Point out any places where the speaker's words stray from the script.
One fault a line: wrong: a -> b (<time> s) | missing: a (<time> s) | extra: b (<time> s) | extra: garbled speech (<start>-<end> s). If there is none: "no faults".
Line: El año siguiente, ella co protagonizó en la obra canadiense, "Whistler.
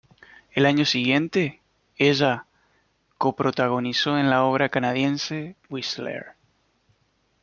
no faults